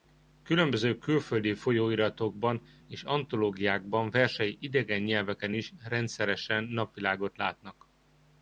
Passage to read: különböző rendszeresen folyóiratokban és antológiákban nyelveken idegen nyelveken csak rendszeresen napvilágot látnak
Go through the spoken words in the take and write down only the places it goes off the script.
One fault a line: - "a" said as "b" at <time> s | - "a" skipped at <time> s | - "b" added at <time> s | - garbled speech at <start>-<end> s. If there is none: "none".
- "rendszeresen" said as "külföldi" at 1.0 s
- "nyelveken" said as "versei" at 4.1 s
- "csak" said as "is" at 5.5 s